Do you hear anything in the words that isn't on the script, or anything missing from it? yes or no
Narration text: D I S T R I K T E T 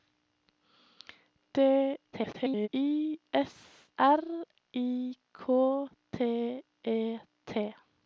yes